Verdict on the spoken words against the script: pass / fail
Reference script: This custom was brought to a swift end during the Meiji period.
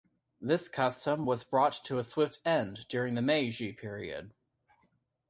pass